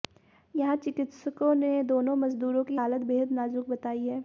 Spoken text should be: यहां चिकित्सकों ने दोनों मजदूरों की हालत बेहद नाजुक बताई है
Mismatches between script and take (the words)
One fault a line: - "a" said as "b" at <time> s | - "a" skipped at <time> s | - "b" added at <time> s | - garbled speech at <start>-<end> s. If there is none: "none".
none